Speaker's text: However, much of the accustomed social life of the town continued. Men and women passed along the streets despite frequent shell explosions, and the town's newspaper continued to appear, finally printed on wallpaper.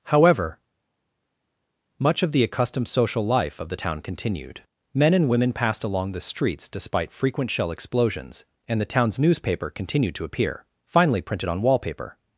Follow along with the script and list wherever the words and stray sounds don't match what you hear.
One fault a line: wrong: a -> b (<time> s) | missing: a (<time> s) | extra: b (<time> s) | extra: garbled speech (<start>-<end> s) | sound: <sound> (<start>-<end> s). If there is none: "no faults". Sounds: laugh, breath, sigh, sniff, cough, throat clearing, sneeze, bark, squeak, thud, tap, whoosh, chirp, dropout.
no faults